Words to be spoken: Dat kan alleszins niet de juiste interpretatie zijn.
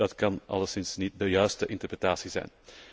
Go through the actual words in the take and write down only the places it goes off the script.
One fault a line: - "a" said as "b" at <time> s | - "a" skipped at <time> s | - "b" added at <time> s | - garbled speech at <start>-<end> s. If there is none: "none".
none